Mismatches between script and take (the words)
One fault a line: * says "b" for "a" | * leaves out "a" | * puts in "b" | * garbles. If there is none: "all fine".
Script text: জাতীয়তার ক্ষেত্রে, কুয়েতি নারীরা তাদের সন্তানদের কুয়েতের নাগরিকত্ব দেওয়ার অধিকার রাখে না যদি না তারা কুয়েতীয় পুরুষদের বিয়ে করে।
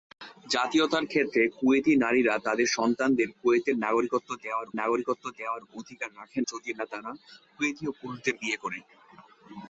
* puts in "নাগরিকত্ব দেওয়ার"
* leaves out "না"